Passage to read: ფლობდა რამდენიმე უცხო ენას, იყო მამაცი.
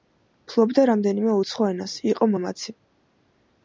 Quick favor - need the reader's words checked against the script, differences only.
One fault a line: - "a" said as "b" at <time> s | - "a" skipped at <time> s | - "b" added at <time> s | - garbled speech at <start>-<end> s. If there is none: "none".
none